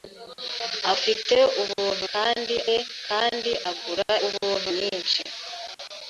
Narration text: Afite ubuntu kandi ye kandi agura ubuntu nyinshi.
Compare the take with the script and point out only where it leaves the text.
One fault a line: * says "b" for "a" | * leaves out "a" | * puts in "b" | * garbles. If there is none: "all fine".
all fine